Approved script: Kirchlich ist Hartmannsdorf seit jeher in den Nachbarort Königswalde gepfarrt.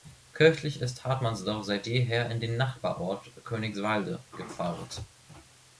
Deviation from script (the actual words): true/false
false